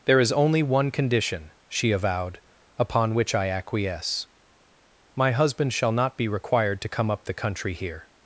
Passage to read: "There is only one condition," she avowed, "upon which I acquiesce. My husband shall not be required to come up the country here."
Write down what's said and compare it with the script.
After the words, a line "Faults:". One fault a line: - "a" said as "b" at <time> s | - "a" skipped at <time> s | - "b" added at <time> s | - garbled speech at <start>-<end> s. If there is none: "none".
"There is only one condition," she avowed, "upon which I acquiesce. My husband shall not be required to come up the country here."
Faults:
none